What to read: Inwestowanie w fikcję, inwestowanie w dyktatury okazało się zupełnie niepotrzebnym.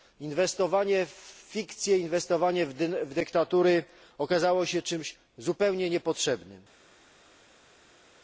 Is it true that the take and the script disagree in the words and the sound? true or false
true